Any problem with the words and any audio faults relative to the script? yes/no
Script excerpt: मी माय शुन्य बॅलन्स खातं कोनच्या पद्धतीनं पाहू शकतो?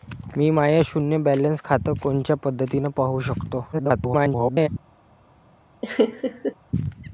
yes